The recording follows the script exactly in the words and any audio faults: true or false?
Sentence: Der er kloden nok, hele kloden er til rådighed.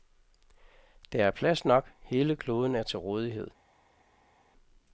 false